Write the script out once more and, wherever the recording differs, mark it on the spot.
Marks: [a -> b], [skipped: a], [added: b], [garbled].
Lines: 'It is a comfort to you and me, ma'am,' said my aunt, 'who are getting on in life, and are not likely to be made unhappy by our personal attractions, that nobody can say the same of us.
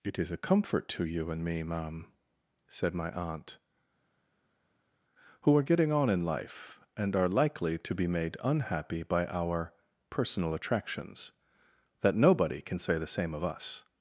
'It is a comfort to you and me, ma'am,' said my aunt, 'who are getting on in life, and are [skipped: not] likely to be made unhappy by our personal attractions, that nobody can say the same of us.